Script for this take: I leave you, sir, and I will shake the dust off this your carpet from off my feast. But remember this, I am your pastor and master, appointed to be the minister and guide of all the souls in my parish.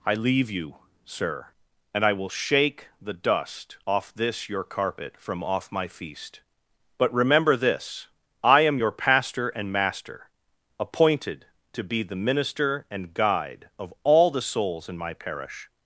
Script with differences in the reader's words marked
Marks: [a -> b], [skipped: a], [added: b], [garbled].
I leave you, sir, and I will shake the dust off this your carpet from off my feast. But remember this, I am your pastor and master, appointed to be the minister and guide of all the souls in my parish.